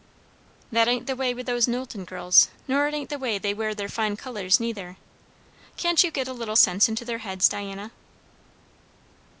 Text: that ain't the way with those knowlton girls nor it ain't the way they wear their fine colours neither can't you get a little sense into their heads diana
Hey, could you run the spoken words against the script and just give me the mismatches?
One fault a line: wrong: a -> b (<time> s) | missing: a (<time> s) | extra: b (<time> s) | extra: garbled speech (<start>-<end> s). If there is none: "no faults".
no faults